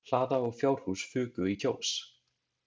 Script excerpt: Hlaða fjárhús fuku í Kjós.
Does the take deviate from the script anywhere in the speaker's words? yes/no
yes